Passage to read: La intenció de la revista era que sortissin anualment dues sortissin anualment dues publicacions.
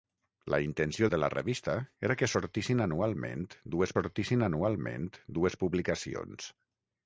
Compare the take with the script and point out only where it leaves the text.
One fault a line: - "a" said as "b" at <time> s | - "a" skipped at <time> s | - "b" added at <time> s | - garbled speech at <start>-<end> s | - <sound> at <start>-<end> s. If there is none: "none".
none